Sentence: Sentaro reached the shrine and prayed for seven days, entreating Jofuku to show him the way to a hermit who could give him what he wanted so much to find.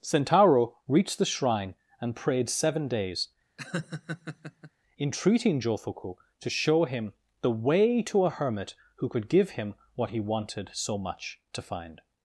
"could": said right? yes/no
yes